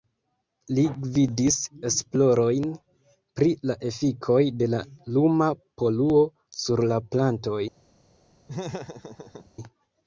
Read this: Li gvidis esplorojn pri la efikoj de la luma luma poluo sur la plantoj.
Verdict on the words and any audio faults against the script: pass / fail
fail